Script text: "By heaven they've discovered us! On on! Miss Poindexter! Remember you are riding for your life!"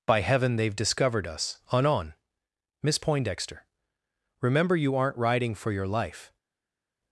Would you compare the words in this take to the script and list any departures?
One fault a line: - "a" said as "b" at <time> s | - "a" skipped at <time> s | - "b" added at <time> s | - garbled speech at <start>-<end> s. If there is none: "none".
- "are" said as "aren't" at 4.9 s